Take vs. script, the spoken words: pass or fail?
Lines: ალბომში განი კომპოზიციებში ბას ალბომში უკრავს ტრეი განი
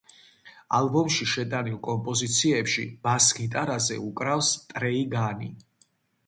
fail